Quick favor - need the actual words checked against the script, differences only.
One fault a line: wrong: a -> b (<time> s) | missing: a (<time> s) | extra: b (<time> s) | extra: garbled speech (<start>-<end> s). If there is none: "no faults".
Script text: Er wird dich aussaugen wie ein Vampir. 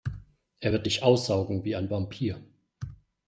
no faults